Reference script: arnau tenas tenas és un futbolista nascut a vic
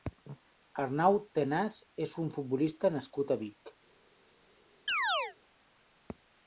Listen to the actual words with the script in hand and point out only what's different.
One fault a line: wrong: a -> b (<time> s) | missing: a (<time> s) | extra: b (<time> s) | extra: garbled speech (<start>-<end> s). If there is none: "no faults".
missing: tenas (1.8 s)